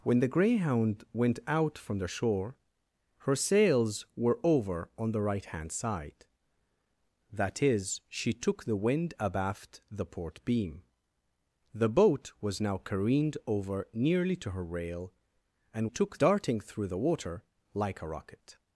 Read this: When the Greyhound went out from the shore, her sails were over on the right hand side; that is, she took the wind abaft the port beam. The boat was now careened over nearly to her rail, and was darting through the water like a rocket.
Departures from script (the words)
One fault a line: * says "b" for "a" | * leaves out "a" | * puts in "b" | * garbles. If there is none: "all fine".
* says "took" for "was"